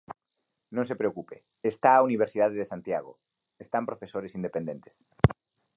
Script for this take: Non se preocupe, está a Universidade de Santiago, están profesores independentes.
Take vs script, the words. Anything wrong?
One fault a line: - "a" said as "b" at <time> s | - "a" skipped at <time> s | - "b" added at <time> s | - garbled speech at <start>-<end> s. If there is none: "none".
none